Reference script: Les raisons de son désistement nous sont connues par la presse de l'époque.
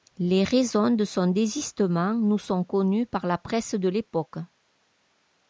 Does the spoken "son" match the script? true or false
true